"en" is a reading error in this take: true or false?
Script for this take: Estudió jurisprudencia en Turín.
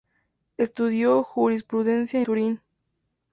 true